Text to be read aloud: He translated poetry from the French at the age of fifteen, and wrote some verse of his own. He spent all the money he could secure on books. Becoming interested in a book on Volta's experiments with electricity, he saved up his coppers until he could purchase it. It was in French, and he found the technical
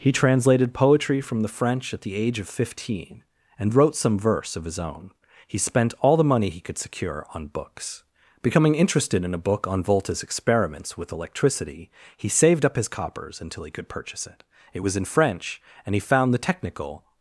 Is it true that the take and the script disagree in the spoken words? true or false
false